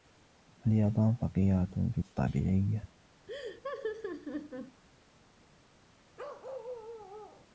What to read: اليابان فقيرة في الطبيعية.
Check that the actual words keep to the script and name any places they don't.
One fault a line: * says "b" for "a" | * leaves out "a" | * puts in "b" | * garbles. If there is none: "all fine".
all fine